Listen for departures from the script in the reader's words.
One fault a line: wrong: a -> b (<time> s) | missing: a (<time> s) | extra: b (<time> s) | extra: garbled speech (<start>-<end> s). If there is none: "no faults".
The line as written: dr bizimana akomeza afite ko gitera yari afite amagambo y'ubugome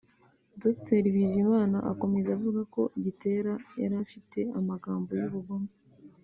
wrong: afite -> avuga (2.4 s)